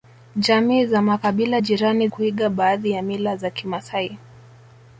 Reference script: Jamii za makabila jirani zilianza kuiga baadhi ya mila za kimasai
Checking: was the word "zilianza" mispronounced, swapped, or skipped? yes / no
yes